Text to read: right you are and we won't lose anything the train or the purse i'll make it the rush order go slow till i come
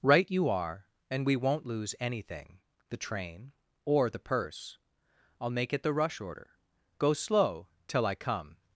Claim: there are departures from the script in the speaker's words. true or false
false